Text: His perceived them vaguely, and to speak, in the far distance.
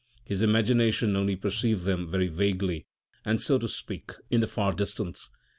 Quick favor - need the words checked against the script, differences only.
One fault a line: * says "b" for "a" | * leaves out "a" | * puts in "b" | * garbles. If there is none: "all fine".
* puts in "imagination only"
* puts in "very"
* puts in "so"